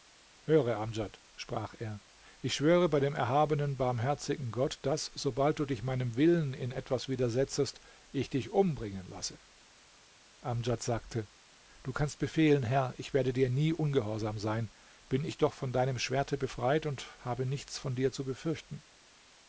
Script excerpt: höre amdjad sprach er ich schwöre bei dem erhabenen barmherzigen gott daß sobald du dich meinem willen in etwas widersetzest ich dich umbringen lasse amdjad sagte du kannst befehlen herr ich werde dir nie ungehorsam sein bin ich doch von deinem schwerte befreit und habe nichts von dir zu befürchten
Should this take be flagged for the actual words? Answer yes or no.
no